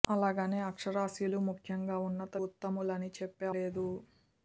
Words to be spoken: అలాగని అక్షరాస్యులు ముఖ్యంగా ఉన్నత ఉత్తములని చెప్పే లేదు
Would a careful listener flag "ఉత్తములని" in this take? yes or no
no